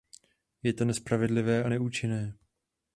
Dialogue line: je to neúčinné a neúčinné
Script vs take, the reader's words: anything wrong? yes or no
yes